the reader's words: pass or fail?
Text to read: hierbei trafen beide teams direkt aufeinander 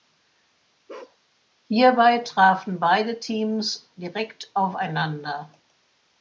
pass